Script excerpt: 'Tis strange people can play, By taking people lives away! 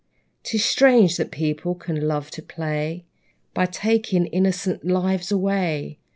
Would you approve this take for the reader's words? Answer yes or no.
no